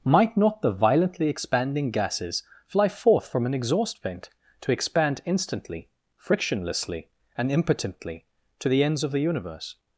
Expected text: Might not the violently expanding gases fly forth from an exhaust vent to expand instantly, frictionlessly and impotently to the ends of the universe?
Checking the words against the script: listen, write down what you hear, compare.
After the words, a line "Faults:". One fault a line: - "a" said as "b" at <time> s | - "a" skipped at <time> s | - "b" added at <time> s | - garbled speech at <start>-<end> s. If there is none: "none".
Might not the violently expanding gases fly forth from an exhaust vent to expand instantly, frictionlessly and impotently to the ends of the universe?
Faults:
none